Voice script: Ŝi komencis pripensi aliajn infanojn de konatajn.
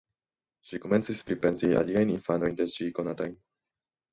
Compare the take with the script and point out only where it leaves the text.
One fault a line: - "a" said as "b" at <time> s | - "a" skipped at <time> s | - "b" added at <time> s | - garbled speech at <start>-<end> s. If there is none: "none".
- "ŝi" added at 2.8 s